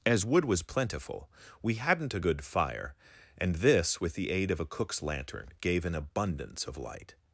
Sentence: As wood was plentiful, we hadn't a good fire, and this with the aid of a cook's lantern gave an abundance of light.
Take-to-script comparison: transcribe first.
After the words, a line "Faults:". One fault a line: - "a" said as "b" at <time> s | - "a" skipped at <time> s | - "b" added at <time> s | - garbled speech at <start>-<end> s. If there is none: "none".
As wood was plentiful, we hadn't a good fire, and this with the aid of a cook's lantern gave an abundance of light.
Faults:
none